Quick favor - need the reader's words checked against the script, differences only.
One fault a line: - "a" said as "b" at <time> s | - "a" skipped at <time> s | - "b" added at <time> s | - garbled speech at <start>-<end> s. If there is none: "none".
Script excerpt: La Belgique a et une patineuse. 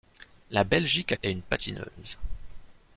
none